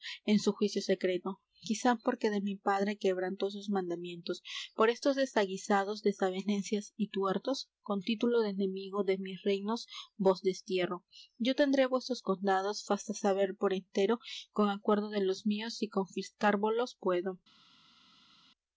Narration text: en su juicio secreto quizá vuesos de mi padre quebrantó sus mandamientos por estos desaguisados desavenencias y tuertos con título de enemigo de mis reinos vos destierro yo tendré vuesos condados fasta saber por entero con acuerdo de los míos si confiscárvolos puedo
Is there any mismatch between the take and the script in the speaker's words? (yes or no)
yes